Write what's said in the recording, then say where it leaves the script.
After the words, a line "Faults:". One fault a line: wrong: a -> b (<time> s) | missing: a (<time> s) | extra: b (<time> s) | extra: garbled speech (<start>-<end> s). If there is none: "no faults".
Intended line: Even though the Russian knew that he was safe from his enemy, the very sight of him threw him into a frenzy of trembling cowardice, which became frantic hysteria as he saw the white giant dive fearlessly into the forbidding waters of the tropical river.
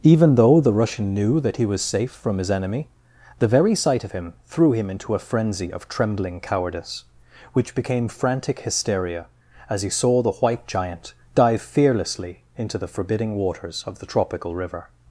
Even though the Russian knew that he was safe from his enemy, the very sight of him threw him into a frenzy of trembling cowardice, which became frantic hysteria as he saw the white giant dive fearlessly into the forbidding waters of the tropical river.
Faults:
no faults